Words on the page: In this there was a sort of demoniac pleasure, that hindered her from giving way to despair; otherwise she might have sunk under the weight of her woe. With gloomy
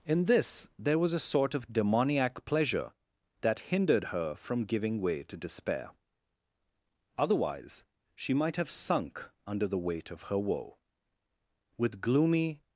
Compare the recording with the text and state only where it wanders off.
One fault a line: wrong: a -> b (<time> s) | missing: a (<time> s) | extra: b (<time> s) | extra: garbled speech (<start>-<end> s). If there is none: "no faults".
no faults